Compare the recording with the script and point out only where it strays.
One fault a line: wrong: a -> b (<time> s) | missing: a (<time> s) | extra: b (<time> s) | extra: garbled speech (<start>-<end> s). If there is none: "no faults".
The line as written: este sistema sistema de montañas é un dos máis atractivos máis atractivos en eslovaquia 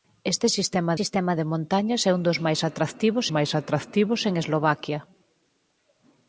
no faults